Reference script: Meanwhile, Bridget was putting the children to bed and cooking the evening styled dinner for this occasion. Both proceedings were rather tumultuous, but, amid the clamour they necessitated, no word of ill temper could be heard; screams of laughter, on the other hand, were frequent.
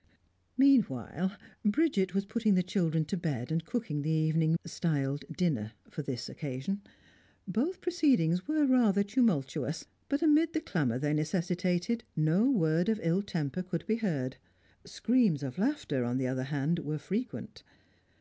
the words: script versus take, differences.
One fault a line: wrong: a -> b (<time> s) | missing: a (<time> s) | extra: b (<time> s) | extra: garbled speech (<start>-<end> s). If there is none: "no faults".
no faults